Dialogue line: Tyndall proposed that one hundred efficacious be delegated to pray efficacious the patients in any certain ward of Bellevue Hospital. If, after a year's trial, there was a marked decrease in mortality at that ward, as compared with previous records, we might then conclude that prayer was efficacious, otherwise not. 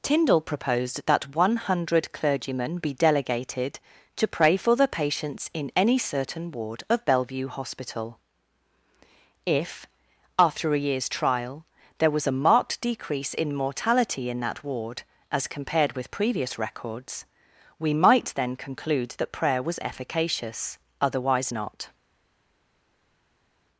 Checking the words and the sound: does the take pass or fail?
fail